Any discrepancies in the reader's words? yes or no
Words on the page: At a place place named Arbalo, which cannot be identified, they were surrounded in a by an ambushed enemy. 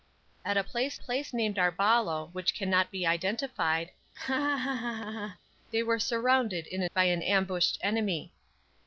no